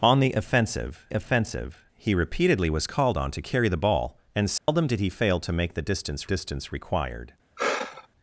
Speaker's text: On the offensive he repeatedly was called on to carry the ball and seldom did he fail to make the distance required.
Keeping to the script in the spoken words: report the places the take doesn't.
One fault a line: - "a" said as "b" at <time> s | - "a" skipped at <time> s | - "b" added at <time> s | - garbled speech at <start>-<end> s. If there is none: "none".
- "offensive" added at 1.1 s
- "distance" added at 6.2 s